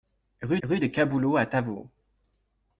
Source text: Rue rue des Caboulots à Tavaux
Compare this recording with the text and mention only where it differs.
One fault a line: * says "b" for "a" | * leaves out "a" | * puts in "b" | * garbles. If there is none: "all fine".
all fine